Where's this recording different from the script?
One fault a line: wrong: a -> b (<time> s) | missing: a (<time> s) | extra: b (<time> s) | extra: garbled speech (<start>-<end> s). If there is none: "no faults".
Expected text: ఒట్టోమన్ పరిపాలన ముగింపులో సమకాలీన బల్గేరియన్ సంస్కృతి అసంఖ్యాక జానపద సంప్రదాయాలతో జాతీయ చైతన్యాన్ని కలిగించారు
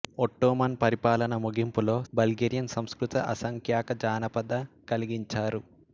missing: సమకాలీన (1.9 s)
missing: సంప్రదాయాలతో జాతీయ చైతన్యాన్ని (4.6 s)